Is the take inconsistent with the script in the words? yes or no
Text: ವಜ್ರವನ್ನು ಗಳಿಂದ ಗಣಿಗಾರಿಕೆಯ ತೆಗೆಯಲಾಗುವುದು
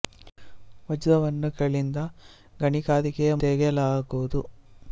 no